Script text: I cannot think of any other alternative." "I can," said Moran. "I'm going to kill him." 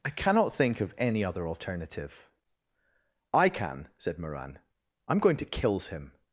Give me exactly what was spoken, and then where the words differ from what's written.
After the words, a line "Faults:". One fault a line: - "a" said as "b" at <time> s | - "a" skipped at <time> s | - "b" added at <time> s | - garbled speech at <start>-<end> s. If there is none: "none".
I cannot think of any other alternative." "I can," said Moran. "I'm going to kills him."
Faults:
- "kill" said as "kills" at 5.4 s